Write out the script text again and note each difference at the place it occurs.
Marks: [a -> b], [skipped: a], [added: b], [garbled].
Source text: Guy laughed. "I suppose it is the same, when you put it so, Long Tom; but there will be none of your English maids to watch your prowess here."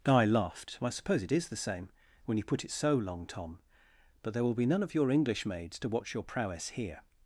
Guy laughed. "I suppose it is the same, when you put it so, Long Tom; but there will be none of your English maids to watch your prowess here."